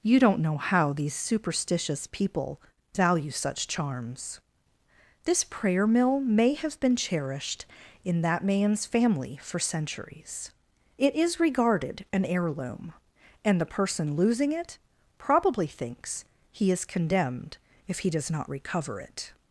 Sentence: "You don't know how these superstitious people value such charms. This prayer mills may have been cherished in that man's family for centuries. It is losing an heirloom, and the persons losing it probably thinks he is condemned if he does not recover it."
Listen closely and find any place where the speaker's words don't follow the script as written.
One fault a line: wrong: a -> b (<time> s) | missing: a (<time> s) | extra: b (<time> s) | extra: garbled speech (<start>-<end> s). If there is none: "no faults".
wrong: mills -> mill (5.8 s)
wrong: losing -> regarded (11.4 s)
wrong: persons -> person (13.7 s)